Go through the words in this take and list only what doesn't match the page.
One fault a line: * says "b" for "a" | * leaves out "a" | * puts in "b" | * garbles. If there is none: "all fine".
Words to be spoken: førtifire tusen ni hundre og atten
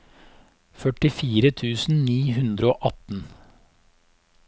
all fine